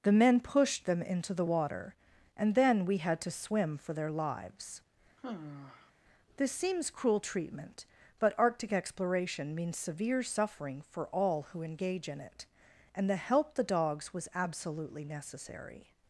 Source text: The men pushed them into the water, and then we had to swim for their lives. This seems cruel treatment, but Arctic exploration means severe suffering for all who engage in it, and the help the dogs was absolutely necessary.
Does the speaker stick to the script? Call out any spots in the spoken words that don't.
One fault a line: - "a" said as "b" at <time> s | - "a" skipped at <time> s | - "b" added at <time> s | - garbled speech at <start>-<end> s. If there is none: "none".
none